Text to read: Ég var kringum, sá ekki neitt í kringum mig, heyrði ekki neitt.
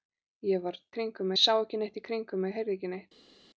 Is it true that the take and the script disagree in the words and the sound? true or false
false